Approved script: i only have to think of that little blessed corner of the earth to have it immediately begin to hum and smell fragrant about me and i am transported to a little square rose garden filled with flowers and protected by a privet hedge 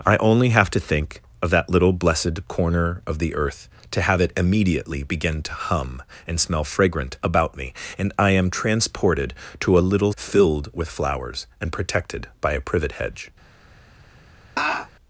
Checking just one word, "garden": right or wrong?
wrong